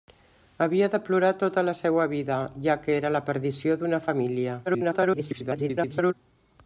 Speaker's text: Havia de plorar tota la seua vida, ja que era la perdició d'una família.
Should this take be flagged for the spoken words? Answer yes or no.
yes